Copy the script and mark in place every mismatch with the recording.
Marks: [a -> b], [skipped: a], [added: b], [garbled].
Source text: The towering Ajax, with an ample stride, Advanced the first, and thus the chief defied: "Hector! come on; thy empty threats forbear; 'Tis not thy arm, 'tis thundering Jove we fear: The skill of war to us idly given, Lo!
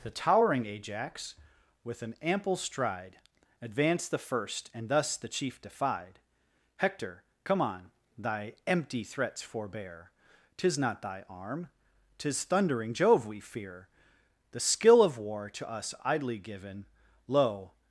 The towering Ajax, with an ample stride, Advanced the first, and thus the chief defied: "Hector! come on; thy empty threats forbear; 'Tis not thy arm, 'tis thundering Jove we fear: The skill of war to us idly given, Lo!